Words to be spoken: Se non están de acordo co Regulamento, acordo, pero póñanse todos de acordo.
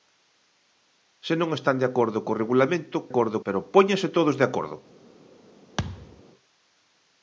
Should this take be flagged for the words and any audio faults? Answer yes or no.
yes